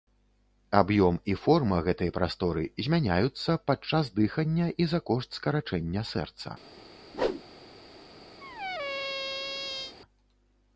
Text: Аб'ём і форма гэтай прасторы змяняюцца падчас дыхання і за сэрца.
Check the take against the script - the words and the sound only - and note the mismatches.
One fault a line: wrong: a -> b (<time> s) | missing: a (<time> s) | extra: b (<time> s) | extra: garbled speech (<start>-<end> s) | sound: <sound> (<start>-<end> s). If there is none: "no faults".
extra: кошт скарачэння (5.1 s)
sound: whoosh (7.1-7.4 s)
sound: squeak (8.4-9.9 s)